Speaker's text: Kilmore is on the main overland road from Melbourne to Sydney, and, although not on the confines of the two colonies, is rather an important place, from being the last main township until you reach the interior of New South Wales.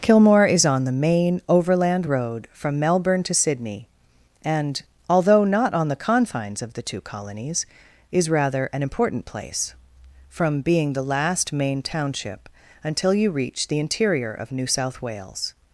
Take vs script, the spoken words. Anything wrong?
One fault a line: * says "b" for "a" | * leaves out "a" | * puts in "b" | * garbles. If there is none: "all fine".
all fine